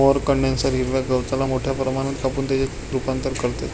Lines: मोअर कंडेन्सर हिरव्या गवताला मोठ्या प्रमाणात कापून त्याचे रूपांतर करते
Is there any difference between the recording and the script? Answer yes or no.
no